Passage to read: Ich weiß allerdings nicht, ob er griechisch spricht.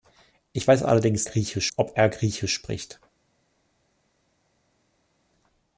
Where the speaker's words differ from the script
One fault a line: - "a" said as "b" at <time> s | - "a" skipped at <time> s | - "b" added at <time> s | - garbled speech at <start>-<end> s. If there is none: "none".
- "nicht" said as "griechisch" at 1.2 s